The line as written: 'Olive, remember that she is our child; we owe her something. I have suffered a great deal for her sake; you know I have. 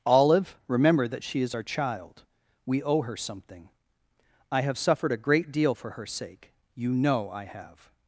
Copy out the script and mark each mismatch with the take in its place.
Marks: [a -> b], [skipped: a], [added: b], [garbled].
'Olive, remember that she is our child; we owe her something. I have suffered a great deal for her sake; you know I have.